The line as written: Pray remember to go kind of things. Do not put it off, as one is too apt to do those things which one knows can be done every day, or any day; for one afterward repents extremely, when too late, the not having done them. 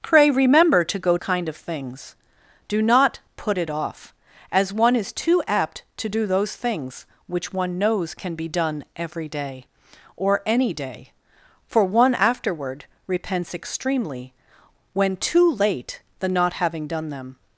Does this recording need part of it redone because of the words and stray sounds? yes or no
no